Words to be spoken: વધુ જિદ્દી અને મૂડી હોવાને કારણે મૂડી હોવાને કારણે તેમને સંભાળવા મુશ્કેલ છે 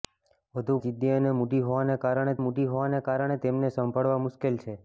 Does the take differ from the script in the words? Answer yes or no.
no